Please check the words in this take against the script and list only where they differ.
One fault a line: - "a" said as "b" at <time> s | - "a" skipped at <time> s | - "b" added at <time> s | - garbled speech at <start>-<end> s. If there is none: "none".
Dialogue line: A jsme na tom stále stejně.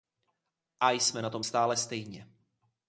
none